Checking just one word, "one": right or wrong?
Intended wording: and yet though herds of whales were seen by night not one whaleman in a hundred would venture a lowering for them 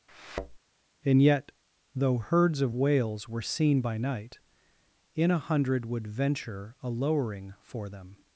wrong